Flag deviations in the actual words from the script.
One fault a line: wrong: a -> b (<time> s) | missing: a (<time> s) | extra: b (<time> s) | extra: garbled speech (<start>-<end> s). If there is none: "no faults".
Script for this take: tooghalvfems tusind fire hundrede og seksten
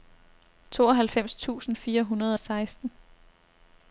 no faults